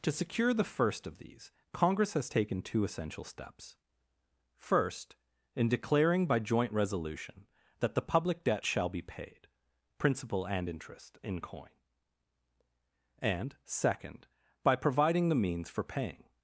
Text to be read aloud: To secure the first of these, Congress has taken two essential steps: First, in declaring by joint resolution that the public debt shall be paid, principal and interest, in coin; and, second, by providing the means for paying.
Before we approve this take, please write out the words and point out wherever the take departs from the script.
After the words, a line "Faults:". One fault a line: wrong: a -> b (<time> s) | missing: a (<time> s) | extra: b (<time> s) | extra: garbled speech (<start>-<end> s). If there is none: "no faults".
To secure the first of these, Congress has taken two essential steps: First, in declaring by joint resolution that the public debt shall be paid, principal and interest, in coin; and, second, by providing the means for paying.
Faults:
no faults